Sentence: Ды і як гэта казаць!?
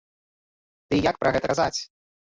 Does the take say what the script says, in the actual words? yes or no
no